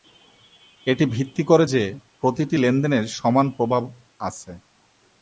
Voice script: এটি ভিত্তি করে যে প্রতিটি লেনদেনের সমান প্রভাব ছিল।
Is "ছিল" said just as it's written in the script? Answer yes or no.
no